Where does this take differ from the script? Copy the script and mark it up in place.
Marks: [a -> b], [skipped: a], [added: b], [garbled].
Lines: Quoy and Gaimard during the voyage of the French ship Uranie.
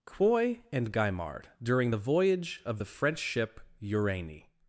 Quoy and Gaimard during the voyage of the French ship Uranie.